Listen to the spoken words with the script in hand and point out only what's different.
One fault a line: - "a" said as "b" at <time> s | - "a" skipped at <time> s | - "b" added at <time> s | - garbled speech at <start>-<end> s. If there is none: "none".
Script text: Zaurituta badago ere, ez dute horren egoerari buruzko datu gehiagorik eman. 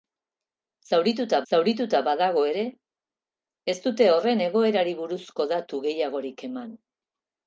- "zaurituta" added at 1.5 s